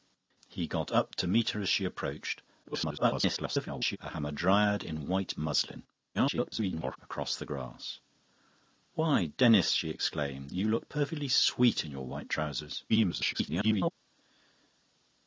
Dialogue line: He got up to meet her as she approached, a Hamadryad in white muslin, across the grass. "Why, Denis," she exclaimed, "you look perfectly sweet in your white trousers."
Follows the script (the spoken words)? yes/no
no